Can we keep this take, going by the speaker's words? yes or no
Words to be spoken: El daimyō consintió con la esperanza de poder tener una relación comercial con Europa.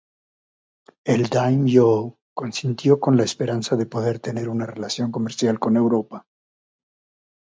yes